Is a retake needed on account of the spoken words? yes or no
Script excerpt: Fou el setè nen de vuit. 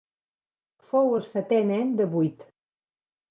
no